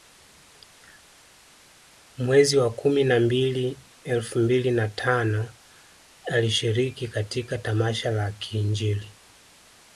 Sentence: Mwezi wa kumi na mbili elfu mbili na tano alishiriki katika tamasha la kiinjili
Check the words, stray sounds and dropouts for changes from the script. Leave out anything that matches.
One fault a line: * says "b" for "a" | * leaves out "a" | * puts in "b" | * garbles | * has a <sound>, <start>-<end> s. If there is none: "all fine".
all fine